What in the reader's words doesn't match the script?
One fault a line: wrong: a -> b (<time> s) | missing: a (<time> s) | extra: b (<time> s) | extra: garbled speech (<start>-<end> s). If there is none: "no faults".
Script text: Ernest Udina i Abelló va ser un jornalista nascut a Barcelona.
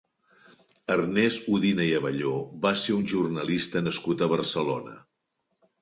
no faults